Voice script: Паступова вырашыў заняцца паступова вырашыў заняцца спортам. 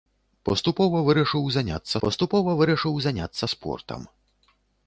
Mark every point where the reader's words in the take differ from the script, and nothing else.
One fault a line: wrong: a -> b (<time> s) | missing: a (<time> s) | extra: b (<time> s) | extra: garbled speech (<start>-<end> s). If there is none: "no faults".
no faults